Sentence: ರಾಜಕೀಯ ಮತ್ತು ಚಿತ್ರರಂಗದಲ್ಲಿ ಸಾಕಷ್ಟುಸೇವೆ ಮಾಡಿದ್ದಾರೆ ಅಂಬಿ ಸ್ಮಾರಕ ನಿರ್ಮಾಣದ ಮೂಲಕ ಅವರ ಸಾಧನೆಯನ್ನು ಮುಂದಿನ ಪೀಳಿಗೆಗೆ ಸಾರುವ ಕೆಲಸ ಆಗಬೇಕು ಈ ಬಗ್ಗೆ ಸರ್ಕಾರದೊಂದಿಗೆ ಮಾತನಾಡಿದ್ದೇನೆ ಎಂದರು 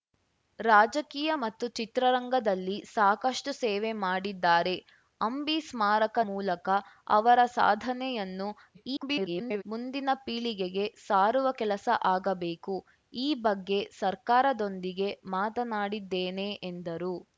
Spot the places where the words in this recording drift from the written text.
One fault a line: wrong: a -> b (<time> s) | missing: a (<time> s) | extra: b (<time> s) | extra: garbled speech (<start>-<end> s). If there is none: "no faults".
missing: ನಿರ್ಮಾಣದ (6.2 s)
extra: garbled speech (8.7-9.6 s)